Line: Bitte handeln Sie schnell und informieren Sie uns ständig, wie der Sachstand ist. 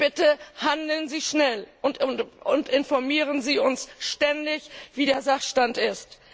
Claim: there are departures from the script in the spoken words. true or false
false